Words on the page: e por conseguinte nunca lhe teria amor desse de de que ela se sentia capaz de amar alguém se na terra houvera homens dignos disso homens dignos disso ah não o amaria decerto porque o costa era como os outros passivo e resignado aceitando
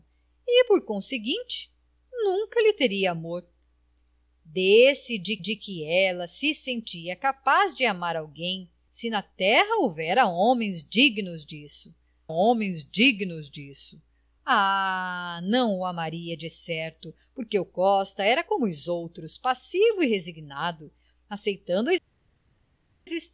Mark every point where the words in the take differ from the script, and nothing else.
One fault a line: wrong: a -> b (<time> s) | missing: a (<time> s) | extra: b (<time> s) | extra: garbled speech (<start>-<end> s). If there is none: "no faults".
no faults